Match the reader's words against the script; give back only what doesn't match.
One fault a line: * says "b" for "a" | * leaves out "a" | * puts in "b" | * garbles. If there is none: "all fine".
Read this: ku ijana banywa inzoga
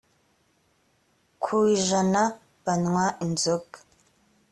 all fine